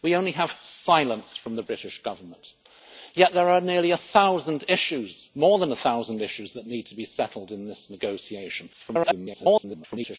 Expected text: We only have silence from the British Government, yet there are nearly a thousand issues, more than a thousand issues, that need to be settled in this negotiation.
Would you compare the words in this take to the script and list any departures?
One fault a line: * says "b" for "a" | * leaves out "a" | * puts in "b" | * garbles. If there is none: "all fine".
* garbles